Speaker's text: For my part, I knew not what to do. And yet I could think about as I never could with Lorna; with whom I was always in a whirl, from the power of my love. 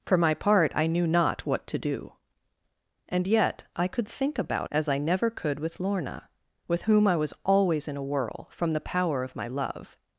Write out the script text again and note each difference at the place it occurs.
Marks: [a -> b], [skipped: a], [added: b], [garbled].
For my part, I knew not what to do. And yet I could think about as I never could with Lorna; with whom I was always in a whirl, from the power of my love.